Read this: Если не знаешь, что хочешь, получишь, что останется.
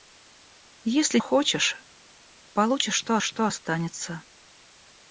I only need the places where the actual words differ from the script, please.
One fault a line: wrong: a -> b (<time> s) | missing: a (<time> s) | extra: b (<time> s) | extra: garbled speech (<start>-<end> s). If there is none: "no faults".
wrong: не знаешь -> хочешь получишь (1.2 s)
missing: хочешь получишь (3.2 s)